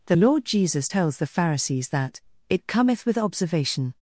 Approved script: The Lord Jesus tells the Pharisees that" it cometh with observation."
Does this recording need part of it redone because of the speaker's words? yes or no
no